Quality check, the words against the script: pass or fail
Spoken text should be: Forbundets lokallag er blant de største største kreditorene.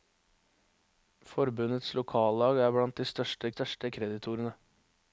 pass